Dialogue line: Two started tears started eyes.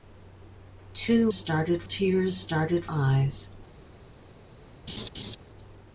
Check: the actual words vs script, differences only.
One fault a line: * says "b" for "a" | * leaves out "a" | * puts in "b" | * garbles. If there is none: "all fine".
all fine